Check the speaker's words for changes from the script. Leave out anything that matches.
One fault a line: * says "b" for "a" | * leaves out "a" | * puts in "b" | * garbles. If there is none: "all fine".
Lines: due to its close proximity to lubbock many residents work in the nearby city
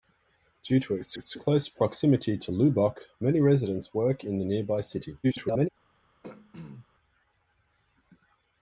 * puts in "its"
* garbles